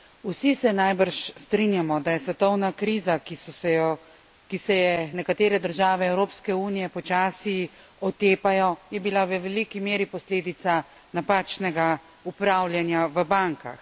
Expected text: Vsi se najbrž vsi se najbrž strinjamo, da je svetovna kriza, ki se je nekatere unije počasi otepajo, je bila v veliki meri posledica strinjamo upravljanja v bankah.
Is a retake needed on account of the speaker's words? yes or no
yes